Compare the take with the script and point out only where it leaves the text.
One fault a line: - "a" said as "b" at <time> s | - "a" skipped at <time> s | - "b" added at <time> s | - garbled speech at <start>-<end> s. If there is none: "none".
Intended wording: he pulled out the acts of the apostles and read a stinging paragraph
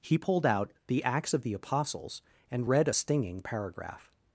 none